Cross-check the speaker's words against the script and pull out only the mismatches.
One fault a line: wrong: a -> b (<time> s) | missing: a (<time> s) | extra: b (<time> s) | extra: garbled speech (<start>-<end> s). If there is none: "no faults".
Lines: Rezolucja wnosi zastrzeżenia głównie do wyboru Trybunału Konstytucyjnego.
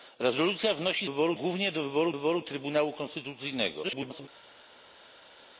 wrong: zastrzeżenia -> wyboru (1.0 s)
extra: wyboru (2.1 s)
extra: garbled speech (3.8-4.3 s)